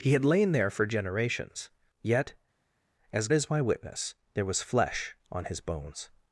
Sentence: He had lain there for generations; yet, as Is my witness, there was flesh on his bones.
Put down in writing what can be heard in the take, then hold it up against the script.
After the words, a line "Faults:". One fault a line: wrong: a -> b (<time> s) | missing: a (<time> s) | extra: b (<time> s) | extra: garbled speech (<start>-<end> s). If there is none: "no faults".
He had lain there for generations; yet, as Is my witness, there was flesh on his bones.
Faults:
no faults